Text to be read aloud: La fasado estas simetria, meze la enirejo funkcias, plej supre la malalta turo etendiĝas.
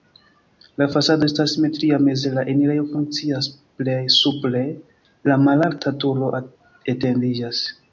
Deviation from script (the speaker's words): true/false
false